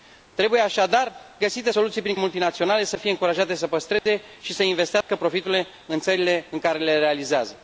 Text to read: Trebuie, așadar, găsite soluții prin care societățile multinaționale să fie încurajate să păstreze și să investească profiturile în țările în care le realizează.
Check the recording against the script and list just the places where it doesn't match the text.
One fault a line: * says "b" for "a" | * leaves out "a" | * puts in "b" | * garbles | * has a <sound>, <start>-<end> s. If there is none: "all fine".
* leaves out "care societățile"
* has a dropout, 4.0-4.1 s
* has a dropout, 5.0-5.1 s